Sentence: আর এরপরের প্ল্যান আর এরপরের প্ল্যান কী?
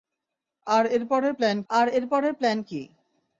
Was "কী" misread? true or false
false